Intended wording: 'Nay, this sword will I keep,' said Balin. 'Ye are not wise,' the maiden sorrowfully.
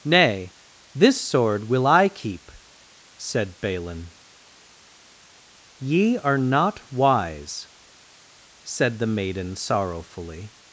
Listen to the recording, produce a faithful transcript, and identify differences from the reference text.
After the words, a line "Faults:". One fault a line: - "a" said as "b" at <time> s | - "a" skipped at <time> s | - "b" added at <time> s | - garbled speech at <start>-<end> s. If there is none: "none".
'Nay, this sword will I keep,' said Balin. 'Ye are not wise,' said the maiden sorrowfully.
Faults:
- "said" added at 8.6 s